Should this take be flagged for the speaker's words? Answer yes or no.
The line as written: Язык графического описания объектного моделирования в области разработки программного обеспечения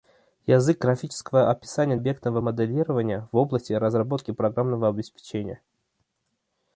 no